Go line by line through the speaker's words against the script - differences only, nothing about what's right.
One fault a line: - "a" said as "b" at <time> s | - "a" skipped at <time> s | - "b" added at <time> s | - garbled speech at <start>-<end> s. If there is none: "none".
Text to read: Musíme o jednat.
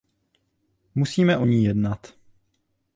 - "ní" added at 1.4 s